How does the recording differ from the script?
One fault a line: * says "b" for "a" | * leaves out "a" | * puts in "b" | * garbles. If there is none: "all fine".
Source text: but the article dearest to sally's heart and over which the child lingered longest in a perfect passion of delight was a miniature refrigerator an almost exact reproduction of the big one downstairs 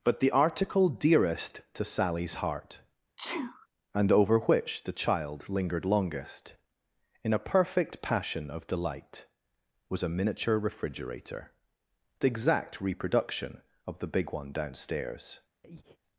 * leaves out "an almost"